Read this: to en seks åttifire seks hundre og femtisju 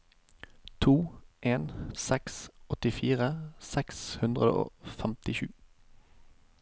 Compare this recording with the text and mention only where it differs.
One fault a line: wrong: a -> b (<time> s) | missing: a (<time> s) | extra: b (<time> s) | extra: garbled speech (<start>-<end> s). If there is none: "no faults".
no faults